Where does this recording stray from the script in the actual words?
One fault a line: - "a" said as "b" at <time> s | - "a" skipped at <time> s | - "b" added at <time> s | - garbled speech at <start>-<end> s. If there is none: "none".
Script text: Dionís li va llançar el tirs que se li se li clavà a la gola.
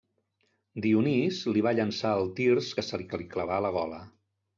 none